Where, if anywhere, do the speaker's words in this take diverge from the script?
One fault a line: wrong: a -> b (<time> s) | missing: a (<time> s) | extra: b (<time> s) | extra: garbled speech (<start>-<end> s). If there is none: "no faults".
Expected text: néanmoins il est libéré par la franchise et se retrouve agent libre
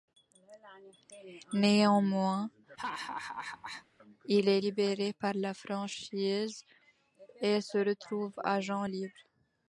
no faults